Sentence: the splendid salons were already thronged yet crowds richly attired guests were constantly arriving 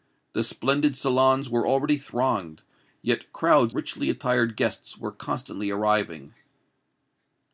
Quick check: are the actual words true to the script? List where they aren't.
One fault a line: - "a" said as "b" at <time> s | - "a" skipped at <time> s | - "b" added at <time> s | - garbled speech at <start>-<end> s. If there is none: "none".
none